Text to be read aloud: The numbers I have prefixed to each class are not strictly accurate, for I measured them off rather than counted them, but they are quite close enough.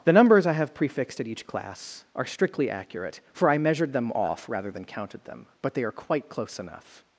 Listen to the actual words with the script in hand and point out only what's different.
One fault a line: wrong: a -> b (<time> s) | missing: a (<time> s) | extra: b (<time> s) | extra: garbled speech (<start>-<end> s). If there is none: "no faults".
wrong: to -> at (1.2 s)
missing: not (2.3 s)